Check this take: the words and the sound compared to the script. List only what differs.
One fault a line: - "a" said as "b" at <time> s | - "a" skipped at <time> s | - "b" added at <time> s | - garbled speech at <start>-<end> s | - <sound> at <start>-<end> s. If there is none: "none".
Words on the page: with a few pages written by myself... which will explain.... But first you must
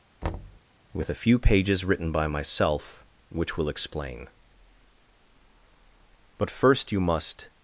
- thud at 0.2-0.6 s